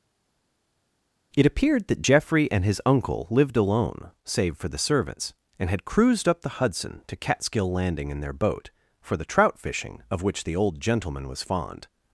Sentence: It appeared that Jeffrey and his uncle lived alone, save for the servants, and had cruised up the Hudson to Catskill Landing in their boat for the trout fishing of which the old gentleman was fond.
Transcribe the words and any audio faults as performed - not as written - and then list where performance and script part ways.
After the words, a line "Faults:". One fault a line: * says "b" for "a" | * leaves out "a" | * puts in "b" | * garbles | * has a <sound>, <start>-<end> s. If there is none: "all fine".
It appeared that Jeffrey and his uncle lived alone, save for the servants, and had cruised up the Hudson to Catskill Landing in their boat for the trout fishing of which the old gentleman was fond.
Faults:
all fine